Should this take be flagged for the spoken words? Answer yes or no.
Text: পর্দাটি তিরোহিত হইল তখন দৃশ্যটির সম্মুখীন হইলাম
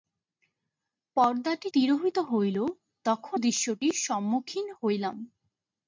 no